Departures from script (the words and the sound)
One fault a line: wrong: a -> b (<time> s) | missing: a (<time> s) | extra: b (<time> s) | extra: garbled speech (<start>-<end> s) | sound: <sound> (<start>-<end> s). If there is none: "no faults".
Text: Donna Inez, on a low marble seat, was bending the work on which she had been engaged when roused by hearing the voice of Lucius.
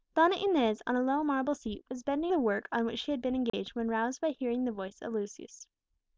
sound: dropout (3.5-3.5 s)